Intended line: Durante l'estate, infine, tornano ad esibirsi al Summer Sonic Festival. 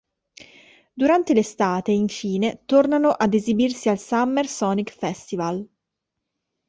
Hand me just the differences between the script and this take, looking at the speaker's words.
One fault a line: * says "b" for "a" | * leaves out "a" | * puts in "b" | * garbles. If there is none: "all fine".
all fine